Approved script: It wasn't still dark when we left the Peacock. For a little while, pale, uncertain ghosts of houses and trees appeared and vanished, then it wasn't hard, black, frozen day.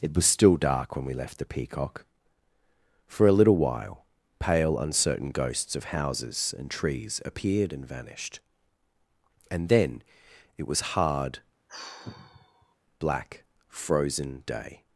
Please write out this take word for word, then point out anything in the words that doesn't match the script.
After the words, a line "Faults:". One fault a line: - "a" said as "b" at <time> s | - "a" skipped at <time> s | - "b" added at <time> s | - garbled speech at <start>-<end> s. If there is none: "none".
It was still dark when we left the Peacock. For a little while, pale, uncertain ghosts of houses and trees appeared and vanished, and then it was hard, black, frozen day.
Faults:
- "wasn't" said as "was" at 0.1 s
- "and" added at 9.5 s
- "wasn't" said as "was" at 10.7 s